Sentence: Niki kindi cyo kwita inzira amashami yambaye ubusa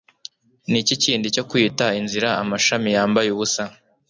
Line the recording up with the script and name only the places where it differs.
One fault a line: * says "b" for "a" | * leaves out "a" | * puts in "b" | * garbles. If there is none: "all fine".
all fine